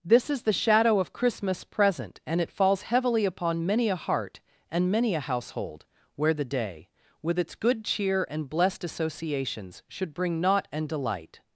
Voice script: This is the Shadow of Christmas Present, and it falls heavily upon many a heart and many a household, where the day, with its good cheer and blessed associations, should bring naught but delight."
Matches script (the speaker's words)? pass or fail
fail